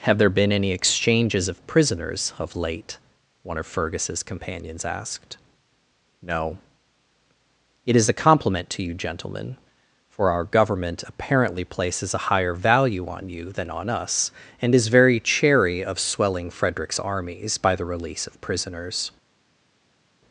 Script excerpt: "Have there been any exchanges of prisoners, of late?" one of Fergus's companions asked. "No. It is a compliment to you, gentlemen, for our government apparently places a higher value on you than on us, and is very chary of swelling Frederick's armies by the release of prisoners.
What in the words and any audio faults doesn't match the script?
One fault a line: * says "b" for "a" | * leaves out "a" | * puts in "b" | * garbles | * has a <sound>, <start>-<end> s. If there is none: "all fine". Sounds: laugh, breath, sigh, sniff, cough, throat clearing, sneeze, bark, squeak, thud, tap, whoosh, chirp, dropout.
all fine